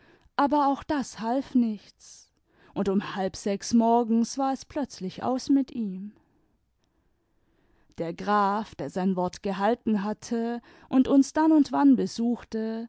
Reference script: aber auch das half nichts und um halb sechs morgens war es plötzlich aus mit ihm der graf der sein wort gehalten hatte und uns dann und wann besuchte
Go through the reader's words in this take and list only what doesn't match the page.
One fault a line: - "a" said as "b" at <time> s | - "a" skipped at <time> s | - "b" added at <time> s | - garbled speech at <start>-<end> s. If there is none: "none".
none